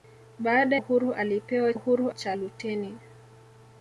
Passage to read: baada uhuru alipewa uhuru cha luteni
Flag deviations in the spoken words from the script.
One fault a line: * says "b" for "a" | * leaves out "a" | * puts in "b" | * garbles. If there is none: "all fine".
all fine